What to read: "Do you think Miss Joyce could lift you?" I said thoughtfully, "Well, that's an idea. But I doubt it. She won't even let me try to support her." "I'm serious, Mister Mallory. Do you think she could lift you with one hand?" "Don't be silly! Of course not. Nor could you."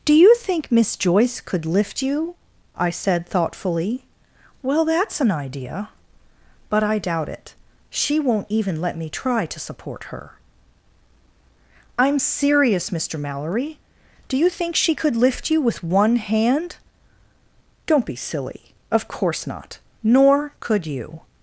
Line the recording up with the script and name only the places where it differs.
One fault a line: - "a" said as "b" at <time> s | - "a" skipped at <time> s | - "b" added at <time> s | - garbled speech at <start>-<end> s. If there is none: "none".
none